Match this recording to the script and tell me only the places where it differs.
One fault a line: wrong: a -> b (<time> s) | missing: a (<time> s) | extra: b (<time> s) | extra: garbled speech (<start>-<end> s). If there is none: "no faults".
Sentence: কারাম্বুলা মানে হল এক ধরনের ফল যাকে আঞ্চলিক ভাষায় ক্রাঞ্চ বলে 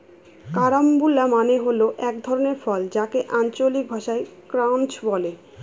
no faults